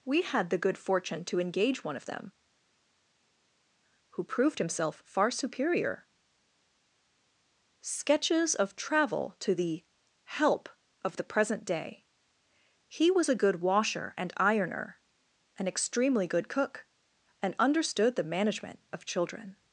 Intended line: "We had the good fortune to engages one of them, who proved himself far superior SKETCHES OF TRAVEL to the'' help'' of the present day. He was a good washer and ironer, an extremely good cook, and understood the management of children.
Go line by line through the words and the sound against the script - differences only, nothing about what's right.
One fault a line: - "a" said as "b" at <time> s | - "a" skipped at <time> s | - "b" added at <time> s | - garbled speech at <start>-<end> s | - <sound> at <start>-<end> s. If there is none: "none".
- "engages" said as "engage" at 1.4 s